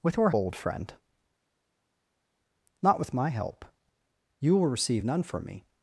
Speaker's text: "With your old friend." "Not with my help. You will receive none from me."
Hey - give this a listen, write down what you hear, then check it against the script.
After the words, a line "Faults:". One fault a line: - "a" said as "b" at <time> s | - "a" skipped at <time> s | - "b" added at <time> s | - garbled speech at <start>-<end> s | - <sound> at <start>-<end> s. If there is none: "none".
"With your old friend." "Not with my help. You will receive none from me."
Faults:
none